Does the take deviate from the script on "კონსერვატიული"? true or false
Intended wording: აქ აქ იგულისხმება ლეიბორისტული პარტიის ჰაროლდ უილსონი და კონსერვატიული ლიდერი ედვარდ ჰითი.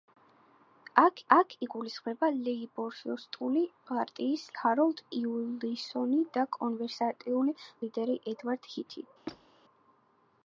false